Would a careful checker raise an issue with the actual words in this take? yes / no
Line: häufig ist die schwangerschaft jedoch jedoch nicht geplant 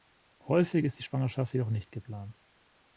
yes